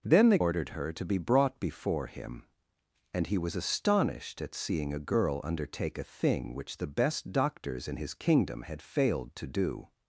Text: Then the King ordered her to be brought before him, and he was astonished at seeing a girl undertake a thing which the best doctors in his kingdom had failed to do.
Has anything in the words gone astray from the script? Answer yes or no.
yes